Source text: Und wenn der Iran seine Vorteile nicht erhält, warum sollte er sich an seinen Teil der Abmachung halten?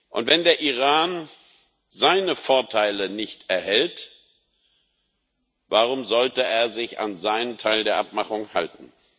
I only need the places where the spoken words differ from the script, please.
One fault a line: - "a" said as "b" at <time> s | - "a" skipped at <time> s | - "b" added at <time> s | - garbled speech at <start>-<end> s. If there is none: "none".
none